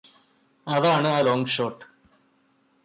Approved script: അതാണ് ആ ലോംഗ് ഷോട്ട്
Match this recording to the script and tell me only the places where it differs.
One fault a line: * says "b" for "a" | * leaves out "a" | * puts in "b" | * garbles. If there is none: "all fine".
all fine